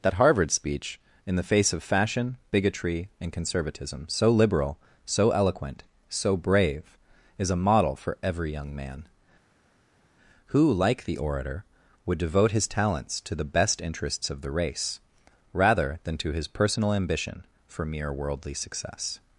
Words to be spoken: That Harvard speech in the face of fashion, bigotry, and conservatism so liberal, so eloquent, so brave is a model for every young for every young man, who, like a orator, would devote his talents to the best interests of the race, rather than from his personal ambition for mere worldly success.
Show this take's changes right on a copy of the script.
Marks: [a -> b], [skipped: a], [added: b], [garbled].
That Harvard speech in the face of fashion, bigotry, and conservatism so liberal, so eloquent, so brave is a model for every young [skipped: for every young] man, who, like [a -> the] orator, would devote his talents to the best interests of the race, rather than [from -> to] his personal ambition for mere worldly success.